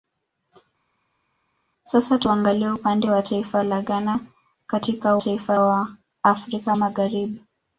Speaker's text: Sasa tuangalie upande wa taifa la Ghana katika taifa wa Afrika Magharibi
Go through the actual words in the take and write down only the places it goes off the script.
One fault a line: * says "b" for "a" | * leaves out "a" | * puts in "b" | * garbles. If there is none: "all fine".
all fine